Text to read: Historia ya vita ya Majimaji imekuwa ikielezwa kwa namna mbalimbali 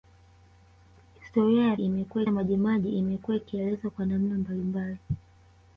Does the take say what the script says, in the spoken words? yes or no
no